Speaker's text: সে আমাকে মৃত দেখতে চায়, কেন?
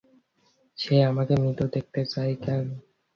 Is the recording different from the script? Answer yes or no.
no